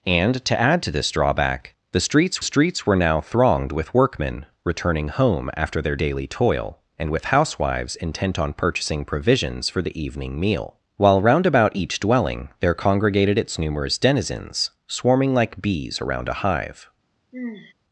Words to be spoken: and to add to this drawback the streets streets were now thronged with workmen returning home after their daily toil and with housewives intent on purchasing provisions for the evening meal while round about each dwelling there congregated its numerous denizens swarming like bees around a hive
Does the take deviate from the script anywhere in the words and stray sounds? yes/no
yes